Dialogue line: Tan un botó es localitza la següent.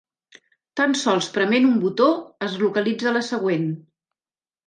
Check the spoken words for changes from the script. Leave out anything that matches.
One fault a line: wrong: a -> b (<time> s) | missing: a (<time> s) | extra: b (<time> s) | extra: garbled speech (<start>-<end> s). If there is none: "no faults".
extra: sols prement (1.0 s)